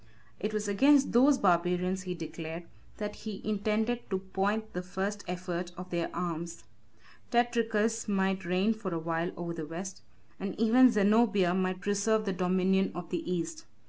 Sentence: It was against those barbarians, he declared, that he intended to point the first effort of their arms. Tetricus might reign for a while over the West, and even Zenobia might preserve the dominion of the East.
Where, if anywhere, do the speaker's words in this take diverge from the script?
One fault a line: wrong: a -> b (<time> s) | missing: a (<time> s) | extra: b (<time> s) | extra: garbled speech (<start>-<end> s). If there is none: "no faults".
no faults